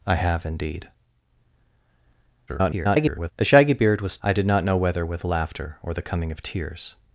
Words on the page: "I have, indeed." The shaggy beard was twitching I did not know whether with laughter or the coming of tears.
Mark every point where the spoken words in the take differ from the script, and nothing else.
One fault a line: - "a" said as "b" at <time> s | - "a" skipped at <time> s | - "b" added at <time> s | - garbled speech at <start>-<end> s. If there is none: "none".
- garbled speech at 2.5-3.3 s
- "twitching" skipped at 4.2 s